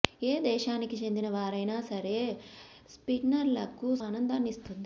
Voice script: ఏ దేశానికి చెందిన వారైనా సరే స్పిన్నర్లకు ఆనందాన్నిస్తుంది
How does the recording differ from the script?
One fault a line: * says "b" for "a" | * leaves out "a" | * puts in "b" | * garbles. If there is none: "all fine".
all fine